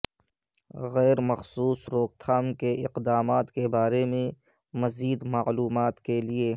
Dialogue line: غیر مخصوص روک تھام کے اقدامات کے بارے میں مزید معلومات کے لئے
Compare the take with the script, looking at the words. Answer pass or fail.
pass